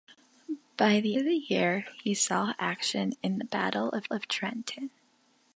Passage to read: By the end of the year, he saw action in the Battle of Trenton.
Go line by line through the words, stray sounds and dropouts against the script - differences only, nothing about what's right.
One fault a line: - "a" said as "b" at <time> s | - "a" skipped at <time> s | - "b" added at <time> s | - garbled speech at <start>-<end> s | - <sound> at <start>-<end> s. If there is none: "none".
- "end" skipped at 1.2 s
- "of" added at 4.1 s